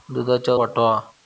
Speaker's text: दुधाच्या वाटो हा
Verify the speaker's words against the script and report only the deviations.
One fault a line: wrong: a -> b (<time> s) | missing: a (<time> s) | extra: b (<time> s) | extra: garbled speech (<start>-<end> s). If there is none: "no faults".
no faults